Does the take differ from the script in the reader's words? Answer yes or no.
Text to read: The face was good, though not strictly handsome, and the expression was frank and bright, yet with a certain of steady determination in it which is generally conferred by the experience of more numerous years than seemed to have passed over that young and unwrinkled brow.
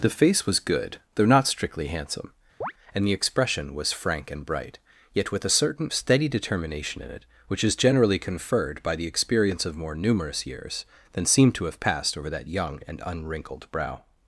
no